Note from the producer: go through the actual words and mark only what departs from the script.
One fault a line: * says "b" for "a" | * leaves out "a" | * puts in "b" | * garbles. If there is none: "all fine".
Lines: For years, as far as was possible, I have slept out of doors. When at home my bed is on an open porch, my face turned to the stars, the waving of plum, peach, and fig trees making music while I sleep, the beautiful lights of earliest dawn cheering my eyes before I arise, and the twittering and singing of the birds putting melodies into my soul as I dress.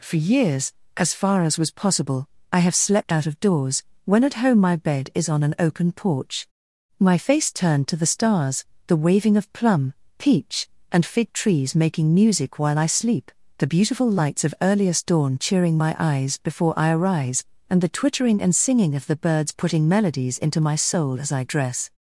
all fine